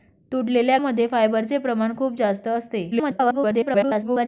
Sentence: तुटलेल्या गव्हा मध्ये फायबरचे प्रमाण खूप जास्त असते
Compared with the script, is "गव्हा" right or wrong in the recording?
wrong